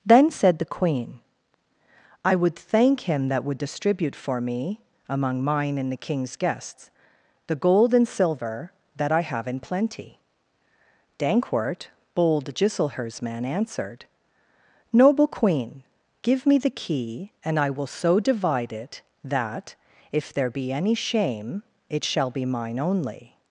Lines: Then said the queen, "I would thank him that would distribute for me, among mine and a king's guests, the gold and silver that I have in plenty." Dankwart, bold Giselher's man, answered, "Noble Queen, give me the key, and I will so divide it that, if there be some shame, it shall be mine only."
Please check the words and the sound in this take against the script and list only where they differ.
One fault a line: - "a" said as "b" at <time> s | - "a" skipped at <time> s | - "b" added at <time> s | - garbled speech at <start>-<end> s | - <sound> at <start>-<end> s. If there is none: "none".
- "a" said as "the" at 5.9 s
- "some" said as "any" at 20.7 s